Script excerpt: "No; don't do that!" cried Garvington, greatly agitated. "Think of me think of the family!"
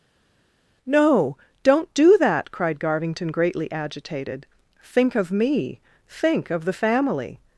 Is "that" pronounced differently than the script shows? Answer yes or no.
no